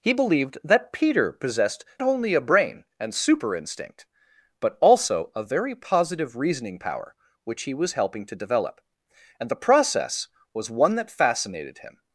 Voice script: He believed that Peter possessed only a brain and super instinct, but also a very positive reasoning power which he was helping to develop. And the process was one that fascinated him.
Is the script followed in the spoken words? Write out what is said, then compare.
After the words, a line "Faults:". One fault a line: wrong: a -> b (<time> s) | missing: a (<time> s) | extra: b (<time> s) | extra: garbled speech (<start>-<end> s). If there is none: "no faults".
He believed that Peter possessed only a brain and super instinct, but also a very positive reasoning power which he was helping to develop. And the process was one that fascinated him.
Faults:
no faults